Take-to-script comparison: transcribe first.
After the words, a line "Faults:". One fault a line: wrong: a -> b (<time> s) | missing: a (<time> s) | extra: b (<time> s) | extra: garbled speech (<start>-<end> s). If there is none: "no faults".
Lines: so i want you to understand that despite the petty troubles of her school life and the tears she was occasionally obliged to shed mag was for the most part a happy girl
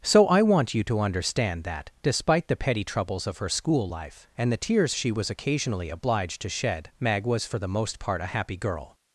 so i want you to understand that despite the petty troubles of her school life and the tears she was occasionally obliged to shed mag was for the most part a happy girl
Faults:
no faults